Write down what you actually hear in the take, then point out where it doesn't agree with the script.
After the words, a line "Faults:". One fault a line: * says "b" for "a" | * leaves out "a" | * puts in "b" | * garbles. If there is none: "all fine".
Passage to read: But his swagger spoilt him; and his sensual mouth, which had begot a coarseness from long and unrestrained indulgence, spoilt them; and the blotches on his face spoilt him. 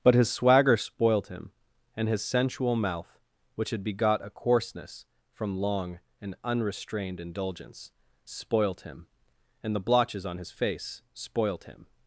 But his swagger spoilt him; and his sensual mouth, which had begot a coarseness from long and unrestrained indulgence, spoilt him; and the blotches on his face spoilt him.
Faults:
* says "him" for "them"